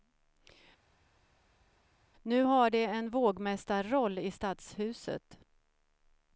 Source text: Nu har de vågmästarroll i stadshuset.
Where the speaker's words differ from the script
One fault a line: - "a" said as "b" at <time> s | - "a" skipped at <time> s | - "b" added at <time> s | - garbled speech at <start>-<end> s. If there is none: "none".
- "en" added at 2.8 s